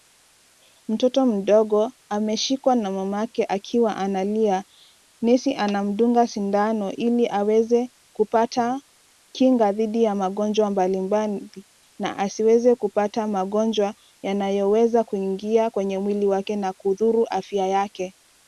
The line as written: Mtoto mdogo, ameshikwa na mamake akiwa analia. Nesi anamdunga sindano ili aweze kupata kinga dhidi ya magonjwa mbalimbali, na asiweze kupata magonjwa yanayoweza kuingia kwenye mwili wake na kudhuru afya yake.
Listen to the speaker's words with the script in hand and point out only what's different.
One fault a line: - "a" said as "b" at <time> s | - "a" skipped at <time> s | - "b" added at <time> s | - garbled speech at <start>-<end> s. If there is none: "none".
none